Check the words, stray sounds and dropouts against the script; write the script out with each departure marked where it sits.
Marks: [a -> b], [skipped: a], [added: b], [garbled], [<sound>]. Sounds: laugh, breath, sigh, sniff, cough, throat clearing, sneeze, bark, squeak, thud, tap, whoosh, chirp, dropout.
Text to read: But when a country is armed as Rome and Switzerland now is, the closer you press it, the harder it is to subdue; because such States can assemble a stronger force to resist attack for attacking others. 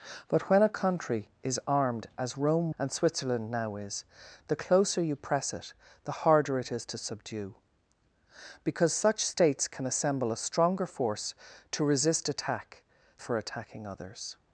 But when a country is armed as Rome and Switzerland now is, the closer you press it, the harder it is to subdue; because such States can assemble a stronger force to resist attack for attacking others.